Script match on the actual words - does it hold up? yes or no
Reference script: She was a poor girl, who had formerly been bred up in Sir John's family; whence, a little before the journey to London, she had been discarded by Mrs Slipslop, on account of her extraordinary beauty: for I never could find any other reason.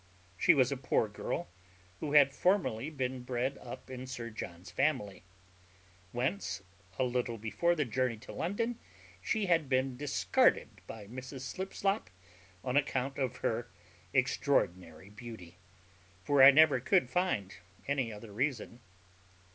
yes